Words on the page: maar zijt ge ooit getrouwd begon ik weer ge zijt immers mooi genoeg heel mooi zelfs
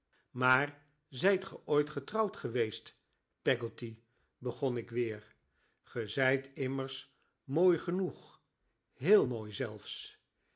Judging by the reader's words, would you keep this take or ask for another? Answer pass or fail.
fail